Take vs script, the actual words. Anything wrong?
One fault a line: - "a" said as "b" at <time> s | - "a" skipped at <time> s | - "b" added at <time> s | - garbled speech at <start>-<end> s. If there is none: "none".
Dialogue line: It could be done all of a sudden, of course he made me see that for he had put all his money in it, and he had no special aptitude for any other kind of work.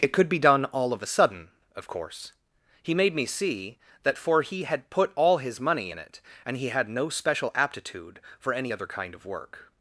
none